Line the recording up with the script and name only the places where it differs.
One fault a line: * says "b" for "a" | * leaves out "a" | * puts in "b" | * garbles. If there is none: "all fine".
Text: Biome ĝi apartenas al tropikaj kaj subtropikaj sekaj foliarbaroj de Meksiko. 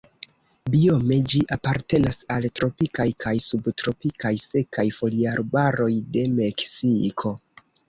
all fine